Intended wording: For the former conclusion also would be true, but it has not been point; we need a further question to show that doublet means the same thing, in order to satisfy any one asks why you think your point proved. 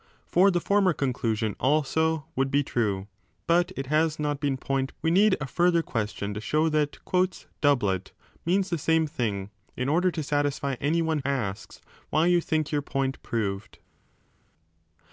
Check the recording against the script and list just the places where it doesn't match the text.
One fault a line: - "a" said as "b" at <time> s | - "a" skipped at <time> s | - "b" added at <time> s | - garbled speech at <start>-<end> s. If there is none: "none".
none